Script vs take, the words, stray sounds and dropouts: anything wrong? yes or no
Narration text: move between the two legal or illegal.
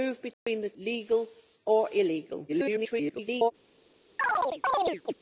yes